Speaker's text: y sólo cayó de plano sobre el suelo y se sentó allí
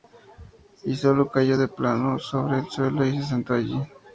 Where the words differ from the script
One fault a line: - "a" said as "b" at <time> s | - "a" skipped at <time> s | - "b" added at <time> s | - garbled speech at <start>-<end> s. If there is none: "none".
none